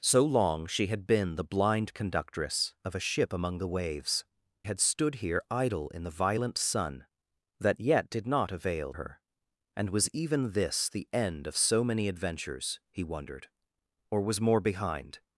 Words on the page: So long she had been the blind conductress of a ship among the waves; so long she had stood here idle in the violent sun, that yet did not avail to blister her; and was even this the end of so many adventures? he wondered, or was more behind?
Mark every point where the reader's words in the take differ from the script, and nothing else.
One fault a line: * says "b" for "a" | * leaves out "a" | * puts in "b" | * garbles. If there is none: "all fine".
* leaves out "so long she"
* leaves out "to blister"